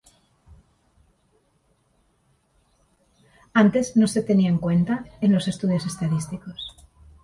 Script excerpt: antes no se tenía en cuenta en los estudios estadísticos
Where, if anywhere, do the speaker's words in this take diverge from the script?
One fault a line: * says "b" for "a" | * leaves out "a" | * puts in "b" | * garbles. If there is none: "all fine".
all fine